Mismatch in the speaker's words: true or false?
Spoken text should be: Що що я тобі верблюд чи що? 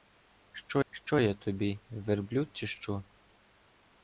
false